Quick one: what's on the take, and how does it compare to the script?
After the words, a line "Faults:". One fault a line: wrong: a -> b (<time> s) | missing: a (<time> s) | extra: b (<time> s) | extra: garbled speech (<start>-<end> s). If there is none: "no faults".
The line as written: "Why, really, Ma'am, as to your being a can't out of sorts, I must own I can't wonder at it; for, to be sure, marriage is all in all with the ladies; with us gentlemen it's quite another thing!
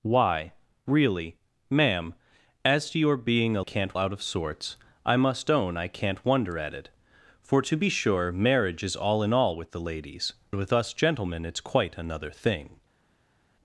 "Why, really, Ma'am, as to your being a can't out of sorts, I must own I can't wonder at it; for, to be sure, marriage is all in all with the ladies; with us gentlemen it's quite another thing!
Faults:
no faults